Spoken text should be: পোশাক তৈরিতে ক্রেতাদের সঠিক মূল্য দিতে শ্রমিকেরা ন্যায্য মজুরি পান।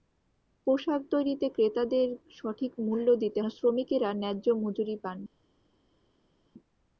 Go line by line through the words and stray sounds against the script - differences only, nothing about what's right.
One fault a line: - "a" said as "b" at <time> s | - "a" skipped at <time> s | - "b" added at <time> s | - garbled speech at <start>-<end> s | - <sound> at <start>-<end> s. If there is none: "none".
none